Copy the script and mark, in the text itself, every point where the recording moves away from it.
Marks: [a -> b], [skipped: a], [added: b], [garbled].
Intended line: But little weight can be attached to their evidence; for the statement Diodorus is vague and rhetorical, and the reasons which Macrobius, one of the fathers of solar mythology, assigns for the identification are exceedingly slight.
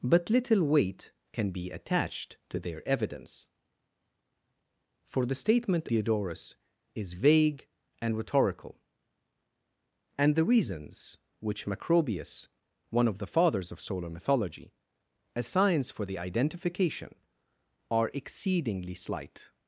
But little weight can be attached to their evidence; for the statement Diodorus is vague and rhetorical, and the reasons which Macrobius, one of the fathers of solar mythology, assigns for the identification are exceedingly slight.